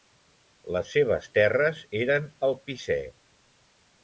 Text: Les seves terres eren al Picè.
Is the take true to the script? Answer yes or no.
yes